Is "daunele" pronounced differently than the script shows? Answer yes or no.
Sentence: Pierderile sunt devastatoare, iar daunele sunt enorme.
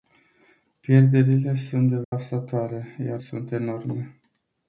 yes